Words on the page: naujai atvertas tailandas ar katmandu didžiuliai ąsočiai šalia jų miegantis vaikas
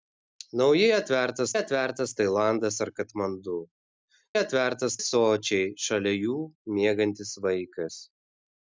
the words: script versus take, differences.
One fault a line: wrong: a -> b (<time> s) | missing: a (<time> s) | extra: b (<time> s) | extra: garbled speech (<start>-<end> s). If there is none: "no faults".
extra: atvertas (1.6 s)
wrong: didžiuliai -> atvertas (4.4 s)